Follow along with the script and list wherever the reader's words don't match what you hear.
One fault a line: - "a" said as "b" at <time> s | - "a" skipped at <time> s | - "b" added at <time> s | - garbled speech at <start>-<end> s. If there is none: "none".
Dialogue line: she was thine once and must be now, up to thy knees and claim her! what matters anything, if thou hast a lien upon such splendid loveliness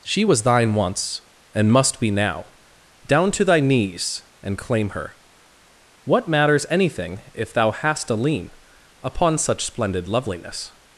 - "up" said as "down" at 3.1 s